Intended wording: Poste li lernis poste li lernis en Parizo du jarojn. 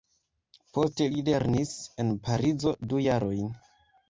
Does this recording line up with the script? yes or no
no